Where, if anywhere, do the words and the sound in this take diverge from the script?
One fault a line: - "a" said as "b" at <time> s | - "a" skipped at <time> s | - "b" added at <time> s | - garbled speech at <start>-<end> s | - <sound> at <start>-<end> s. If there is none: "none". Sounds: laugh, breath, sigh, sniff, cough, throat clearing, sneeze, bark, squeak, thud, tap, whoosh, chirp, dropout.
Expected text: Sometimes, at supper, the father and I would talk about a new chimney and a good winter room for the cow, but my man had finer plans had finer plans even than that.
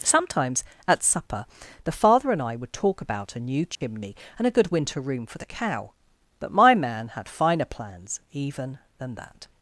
- dropout at 3.7-3.8 s
- "had finer plans" skipped at 8.2 s